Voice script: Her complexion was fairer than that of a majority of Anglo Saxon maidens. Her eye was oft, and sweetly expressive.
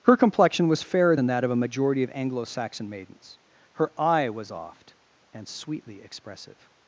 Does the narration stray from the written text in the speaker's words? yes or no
no